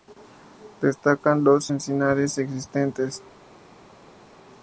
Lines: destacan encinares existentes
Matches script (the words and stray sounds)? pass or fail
fail